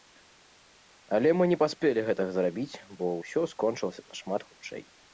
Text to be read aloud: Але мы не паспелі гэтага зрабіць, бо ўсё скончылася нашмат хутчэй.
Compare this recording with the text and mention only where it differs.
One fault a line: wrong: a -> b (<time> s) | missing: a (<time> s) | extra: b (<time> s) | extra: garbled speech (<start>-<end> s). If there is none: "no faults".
no faults